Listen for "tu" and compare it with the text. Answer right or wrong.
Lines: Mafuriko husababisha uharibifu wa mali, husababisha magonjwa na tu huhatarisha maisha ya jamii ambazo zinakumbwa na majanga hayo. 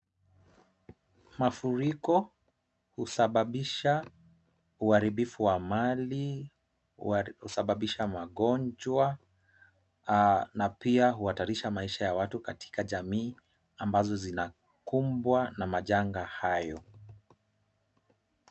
wrong